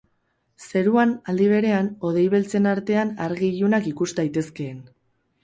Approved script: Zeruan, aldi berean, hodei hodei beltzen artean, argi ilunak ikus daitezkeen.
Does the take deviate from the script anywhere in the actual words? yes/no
yes